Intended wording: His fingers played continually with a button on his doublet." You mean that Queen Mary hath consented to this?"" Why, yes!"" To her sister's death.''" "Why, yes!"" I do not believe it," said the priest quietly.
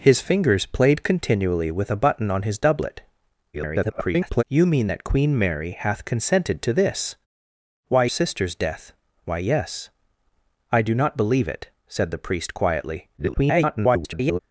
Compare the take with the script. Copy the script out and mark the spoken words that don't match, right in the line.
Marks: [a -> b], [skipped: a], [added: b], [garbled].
His fingers played continually with a button on his doublet." [garbled] You mean that Queen Mary hath consented to this?"" Why, [skipped: yes!"" To her] sister's death.''" "Why, yes!"" I do not believe it," said the priest quietly. [garbled]